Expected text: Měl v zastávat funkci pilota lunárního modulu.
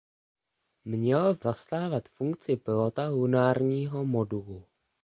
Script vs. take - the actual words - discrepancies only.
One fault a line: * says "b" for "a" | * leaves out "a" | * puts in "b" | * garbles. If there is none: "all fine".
all fine